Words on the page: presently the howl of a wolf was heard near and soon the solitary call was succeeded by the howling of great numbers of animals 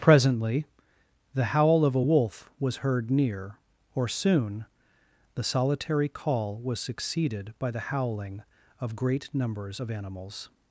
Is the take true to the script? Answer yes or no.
no